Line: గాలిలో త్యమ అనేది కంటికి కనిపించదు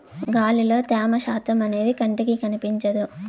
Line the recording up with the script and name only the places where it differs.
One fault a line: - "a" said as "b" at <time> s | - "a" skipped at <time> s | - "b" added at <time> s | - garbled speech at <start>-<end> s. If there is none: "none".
- "శాతం" added at 1.2 s